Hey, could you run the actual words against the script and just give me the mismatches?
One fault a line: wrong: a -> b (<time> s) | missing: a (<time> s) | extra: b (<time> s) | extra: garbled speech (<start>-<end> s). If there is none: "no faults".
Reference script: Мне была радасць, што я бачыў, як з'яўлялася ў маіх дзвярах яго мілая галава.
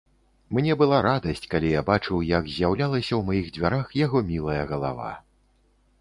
wrong: што -> калі (1.5 s)